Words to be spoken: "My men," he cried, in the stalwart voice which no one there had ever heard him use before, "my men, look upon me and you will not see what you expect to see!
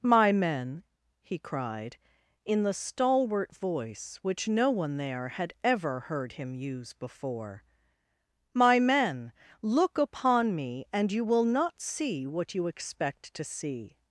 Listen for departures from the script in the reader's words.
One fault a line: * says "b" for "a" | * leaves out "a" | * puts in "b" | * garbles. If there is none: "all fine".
all fine